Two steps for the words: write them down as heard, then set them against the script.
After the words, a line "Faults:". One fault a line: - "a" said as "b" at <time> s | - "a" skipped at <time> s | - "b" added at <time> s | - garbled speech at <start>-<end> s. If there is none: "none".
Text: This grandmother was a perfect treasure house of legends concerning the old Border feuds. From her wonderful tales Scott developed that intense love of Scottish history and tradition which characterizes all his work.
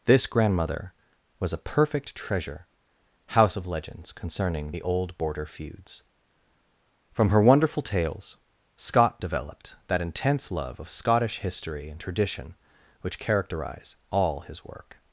This grandmother was a perfect treasure house of legends concerning the old Border feuds. From her wonderful tales Scott developed that intense love of Scottish history and tradition which characterize all his work.
Faults:
- "characterizes" said as "characterize" at 13.2 s